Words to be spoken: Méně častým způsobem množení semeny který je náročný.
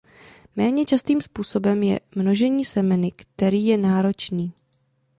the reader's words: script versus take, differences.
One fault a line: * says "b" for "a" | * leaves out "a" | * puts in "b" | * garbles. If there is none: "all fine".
* puts in "je"